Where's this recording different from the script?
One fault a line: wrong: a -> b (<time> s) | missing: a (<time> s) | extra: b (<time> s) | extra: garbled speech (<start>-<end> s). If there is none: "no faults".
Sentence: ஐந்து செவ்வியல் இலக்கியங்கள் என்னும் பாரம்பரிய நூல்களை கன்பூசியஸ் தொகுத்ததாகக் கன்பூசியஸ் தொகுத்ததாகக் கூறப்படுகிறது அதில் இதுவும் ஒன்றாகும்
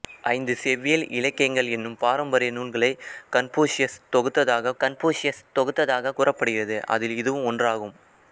no faults